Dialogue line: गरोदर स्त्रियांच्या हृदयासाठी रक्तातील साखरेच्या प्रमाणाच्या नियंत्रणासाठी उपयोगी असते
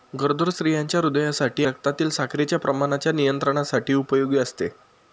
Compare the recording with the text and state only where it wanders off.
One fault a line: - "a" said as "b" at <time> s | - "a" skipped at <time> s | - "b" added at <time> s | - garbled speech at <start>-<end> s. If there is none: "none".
none